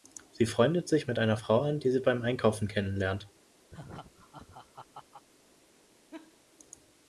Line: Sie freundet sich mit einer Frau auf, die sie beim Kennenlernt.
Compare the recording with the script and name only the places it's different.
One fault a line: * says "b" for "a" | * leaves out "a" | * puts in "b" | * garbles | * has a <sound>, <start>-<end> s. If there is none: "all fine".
* says "an" for "auf"
* puts in "Einkaufen"
* has a laugh, 3.7-5.2 s
* has a laugh, 6.1-6.4 s